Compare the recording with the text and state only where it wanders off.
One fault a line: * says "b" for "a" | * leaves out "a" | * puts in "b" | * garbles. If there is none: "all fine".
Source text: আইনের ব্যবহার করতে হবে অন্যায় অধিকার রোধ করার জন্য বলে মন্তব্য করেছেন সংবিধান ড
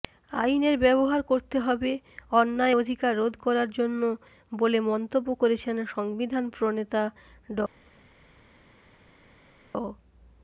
* puts in "প্রণেতা"